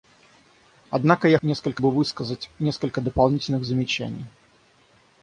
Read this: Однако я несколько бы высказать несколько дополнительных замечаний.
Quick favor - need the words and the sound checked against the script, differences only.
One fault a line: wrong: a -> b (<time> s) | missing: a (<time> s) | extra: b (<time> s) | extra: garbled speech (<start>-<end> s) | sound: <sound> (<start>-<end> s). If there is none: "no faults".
no faults